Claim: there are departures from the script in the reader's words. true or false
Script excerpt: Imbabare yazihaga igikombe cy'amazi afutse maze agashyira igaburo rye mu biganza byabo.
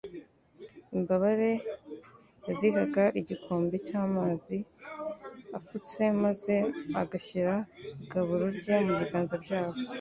false